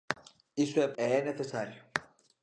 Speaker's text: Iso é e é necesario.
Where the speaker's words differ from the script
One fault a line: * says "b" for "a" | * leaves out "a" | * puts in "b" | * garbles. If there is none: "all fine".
all fine